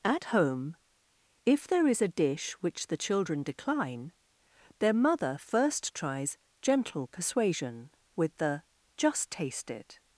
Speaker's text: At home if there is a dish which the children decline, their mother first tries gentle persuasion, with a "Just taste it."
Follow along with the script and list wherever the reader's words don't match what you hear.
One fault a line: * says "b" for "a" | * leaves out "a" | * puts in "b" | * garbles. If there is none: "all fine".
* says "the" for "a"